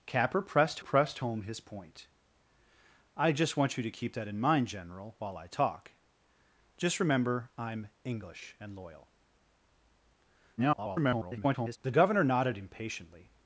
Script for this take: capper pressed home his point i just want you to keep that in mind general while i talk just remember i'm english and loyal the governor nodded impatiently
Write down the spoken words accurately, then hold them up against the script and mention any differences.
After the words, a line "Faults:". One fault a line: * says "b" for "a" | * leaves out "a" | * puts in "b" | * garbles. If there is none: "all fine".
capper pressed pressed home his point i just want you to keep that in mind general while i talk just remember i'm english and loyal [garbled] the governor nodded impatiently
Faults:
* puts in "pressed"
* garbles